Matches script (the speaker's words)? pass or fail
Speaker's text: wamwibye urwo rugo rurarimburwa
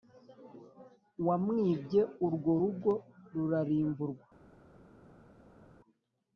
pass